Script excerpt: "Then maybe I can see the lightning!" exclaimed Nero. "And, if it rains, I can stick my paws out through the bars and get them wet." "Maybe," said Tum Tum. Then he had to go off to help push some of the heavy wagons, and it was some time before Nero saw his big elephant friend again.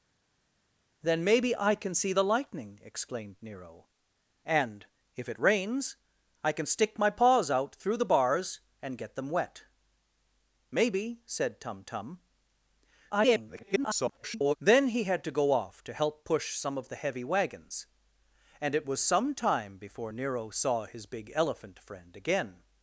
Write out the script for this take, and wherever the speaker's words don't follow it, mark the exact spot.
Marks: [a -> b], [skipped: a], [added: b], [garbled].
"Then maybe I can see the lightning!" exclaimed Nero. "And, if it rains, I can stick my paws out through the bars and get them wet." "Maybe," said Tum Tum. [garbled] Then he had to go off to help push some of the heavy wagons, and it was some time before Nero saw his big elephant friend again.